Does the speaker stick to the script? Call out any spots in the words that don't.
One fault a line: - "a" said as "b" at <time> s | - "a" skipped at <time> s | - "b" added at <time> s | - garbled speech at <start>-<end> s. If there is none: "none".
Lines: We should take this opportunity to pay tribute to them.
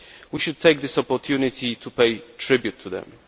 none